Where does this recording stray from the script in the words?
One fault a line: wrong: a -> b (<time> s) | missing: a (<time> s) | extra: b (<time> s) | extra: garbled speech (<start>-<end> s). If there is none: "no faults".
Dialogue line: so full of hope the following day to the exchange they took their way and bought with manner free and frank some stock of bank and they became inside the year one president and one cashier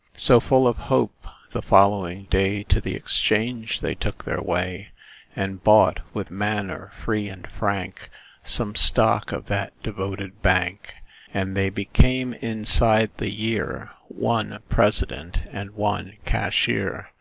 extra: that devoted (9.5 s)